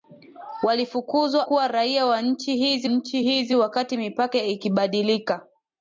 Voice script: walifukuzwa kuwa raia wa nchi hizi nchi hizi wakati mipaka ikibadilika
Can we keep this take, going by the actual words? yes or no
yes